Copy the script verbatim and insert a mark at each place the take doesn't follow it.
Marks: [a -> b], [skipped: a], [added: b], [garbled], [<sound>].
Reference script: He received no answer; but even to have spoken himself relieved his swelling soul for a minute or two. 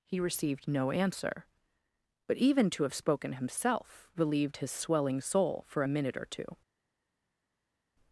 He received no answer; but even to have spoken himself relieved his swelling soul for a minute or two.